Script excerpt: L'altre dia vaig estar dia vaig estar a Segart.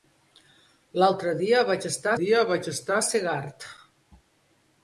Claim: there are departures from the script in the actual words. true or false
false